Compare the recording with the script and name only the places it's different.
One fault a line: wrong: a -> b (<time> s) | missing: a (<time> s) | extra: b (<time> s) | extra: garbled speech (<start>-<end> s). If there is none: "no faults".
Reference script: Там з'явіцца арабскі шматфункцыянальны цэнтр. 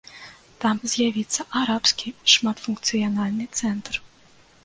no faults